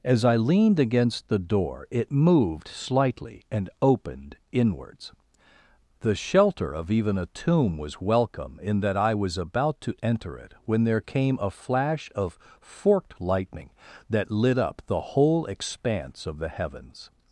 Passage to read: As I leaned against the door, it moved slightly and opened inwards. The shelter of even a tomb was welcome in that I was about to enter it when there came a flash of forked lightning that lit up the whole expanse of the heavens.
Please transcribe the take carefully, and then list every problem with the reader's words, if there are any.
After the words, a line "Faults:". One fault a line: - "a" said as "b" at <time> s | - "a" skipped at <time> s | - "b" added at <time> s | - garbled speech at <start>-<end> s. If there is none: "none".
As I leaned against the door, it moved slightly and opened inwards. The shelter of even a tomb was welcome in that I was about to enter it when there came a flash of forked lightning that lit up the whole expanse of the heavens.
Faults:
none